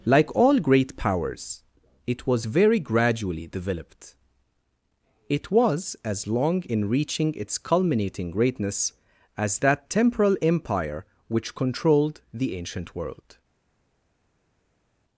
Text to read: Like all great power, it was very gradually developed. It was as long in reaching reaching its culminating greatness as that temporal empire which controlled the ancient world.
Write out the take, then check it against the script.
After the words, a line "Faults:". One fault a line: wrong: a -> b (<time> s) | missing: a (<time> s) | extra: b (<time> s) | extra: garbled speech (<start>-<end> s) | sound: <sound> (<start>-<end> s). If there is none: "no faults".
Like all great powers, it was very gradually developed. It was as long in reaching its culminating greatness as that temporal empire which controlled the ancient world.
Faults:
wrong: power -> powers (1.0 s)
missing: reaching (7.3 s)